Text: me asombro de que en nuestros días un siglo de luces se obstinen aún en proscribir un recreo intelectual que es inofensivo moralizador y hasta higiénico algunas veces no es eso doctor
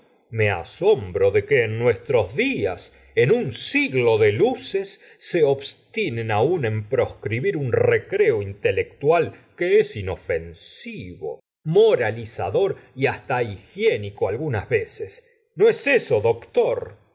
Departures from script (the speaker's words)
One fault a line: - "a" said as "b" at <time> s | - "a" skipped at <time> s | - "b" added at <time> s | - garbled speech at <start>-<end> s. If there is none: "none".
- "en" added at 3.1 s